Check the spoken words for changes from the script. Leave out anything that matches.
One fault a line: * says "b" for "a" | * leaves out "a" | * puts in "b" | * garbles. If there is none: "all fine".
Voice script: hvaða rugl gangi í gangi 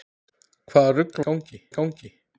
all fine